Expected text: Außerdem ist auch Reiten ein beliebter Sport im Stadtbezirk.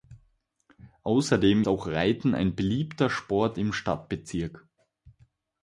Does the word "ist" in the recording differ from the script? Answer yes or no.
yes